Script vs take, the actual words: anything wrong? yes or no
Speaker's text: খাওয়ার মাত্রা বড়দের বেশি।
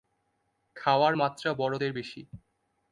no